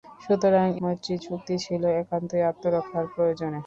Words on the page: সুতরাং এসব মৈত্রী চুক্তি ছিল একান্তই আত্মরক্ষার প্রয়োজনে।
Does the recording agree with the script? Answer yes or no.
no